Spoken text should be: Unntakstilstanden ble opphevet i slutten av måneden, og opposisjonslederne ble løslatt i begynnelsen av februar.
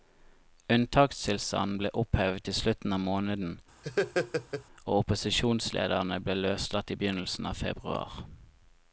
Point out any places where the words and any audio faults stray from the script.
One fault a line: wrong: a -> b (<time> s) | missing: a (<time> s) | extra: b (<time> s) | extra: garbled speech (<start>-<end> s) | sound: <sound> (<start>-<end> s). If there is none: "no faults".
sound: laugh (3.8-4.6 s)